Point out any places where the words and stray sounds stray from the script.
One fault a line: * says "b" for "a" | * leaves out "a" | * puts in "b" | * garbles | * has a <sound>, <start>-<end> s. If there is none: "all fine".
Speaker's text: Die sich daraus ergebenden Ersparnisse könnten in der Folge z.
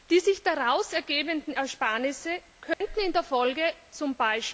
* has a dropout, 2.7-2.8 s